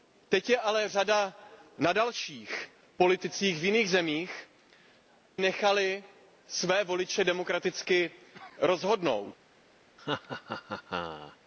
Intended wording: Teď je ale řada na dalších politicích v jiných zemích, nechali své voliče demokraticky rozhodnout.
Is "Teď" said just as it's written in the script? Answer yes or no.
yes